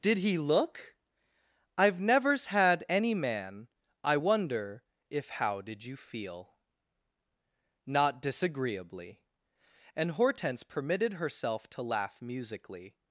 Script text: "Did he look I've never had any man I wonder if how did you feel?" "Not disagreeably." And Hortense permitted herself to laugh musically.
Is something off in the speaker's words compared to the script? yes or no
yes